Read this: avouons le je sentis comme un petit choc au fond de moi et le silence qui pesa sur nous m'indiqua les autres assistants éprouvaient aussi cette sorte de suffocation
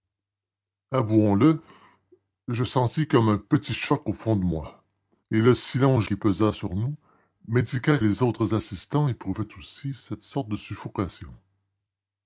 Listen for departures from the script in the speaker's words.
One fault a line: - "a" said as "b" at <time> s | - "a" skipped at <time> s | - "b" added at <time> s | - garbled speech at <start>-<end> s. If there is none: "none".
none